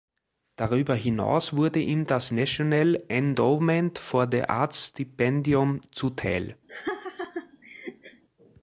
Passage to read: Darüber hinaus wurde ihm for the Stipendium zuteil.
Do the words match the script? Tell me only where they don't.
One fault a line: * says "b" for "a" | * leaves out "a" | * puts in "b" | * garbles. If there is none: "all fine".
* puts in "das National Endowment"
* puts in "Arts"